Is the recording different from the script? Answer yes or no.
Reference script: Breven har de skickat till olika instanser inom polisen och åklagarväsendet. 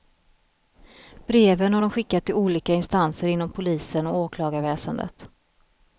no